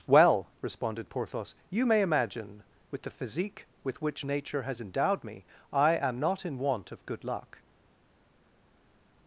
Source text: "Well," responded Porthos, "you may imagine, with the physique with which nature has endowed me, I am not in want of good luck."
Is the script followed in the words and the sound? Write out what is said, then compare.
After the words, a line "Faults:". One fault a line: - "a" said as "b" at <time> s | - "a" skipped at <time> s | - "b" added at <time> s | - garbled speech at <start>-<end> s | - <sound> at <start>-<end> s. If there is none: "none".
"Well," responded Porthos, "you may imagine, with the physique with which nature has endowed me, I am not in want of good luck."
Faults:
none